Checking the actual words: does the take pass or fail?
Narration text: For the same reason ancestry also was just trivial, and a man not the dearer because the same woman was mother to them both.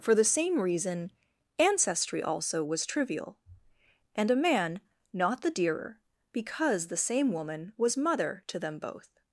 fail